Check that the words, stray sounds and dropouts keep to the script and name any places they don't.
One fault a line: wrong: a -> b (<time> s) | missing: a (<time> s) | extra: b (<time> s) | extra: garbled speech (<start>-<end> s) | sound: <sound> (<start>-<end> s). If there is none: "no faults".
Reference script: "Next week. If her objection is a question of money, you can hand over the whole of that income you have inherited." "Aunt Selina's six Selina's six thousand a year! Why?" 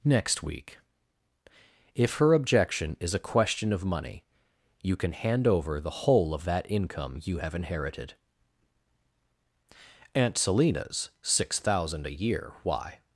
missing: Selina's six (11.6 s)